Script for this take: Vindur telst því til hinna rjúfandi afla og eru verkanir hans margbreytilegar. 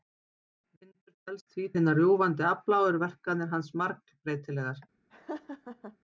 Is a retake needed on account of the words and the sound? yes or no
yes